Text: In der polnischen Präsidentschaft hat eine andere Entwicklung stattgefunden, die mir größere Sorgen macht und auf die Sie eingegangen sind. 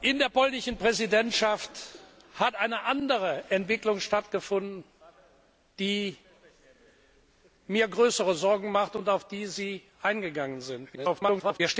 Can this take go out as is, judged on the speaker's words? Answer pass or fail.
fail